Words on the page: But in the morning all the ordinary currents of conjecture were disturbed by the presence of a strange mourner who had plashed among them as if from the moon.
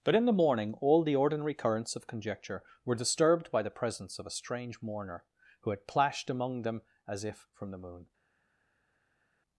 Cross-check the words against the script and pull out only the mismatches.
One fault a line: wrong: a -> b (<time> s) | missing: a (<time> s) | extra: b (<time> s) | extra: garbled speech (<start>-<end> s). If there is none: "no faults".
no faults